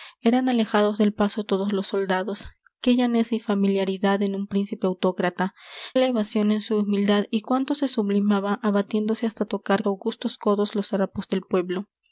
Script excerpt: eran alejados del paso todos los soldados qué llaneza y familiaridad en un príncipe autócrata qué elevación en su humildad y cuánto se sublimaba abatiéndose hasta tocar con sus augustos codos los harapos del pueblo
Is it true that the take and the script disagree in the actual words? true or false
true